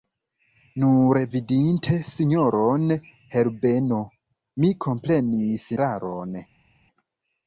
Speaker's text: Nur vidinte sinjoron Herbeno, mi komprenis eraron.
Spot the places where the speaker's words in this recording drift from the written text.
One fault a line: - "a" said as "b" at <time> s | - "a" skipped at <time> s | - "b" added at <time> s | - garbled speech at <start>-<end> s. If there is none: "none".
none